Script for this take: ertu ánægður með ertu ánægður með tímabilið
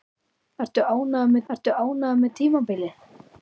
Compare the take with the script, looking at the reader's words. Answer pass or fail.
pass